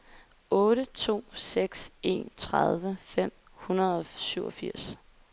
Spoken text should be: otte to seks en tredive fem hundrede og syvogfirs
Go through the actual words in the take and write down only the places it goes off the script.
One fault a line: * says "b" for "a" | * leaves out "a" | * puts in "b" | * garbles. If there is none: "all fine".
all fine